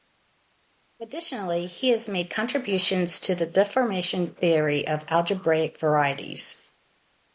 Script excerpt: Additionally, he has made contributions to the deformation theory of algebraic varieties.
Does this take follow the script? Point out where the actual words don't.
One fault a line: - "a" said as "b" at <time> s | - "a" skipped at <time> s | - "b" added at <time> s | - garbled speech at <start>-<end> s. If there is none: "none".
none